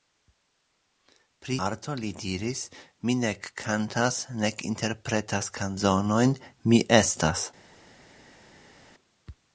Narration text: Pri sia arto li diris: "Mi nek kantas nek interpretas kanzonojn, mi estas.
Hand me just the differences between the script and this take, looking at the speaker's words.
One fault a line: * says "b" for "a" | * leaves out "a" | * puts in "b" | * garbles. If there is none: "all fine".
* leaves out "sia"